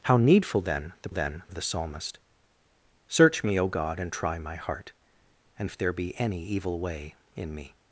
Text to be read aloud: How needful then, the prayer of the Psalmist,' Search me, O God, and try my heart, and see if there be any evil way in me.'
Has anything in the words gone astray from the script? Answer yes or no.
yes